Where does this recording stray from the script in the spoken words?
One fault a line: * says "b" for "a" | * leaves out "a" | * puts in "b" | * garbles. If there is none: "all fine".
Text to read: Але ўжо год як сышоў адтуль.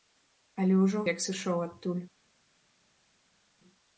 * leaves out "год"